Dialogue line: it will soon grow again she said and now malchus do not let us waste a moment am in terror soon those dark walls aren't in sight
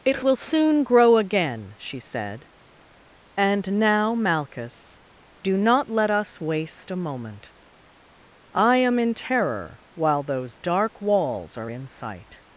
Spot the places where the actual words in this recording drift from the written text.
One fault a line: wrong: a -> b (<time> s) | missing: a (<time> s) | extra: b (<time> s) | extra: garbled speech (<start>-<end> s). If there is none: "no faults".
extra: i (8.5 s)
wrong: soon -> while (9.9 s)
wrong: aren't -> are (11.6 s)